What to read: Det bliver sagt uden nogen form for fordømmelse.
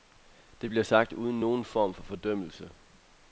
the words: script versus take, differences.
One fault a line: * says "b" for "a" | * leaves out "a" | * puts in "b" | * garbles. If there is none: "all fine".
all fine